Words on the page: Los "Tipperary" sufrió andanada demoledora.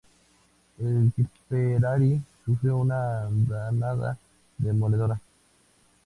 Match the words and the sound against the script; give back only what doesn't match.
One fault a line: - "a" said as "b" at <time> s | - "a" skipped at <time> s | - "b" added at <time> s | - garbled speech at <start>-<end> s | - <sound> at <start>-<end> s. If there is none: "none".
- "Los" said as "El" at 0.8 s
- "una" added at 2.8 s